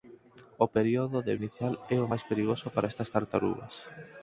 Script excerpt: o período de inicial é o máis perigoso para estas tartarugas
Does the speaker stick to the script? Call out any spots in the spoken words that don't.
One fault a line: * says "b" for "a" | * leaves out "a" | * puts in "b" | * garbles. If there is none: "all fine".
all fine